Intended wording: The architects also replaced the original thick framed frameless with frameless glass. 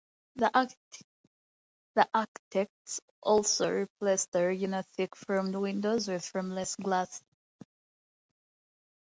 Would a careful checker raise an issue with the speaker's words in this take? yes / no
yes